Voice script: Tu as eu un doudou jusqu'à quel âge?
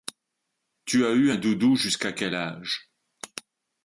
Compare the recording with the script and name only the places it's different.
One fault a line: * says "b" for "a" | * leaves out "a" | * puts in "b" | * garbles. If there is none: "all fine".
all fine